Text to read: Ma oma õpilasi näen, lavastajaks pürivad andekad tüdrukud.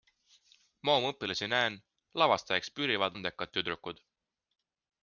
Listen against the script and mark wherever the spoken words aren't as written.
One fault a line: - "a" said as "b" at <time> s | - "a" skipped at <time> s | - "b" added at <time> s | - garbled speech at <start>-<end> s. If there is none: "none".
none